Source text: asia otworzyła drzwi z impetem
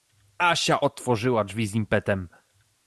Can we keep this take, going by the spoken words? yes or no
yes